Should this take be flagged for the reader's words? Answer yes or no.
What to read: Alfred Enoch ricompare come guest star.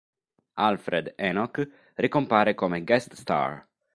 no